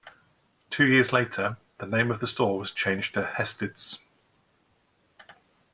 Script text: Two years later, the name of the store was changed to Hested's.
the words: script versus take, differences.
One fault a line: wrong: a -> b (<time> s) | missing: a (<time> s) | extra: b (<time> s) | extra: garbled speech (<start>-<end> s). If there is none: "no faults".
no faults